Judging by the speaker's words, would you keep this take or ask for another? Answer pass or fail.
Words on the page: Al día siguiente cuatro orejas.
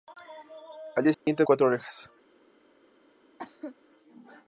pass